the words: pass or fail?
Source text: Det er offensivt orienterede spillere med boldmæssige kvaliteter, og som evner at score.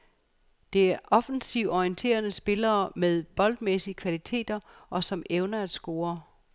pass